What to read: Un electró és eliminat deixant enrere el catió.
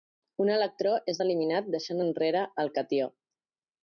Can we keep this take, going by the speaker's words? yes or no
yes